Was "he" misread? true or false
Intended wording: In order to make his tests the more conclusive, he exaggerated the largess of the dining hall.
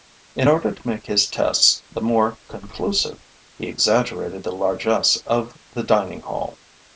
false